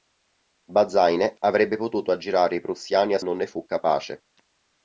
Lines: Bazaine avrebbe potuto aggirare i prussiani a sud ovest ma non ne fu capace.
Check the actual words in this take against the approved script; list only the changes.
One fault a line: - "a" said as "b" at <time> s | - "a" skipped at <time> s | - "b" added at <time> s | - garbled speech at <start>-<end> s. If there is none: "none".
- "sud ovest ma" skipped at 3.2 s